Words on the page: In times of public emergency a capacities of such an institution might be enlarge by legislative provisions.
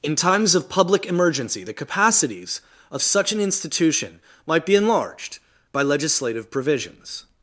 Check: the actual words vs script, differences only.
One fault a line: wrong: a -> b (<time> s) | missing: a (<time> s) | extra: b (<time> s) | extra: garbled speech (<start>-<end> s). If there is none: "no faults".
wrong: a -> the (1.6 s)
wrong: enlarge -> enlarged (4.7 s)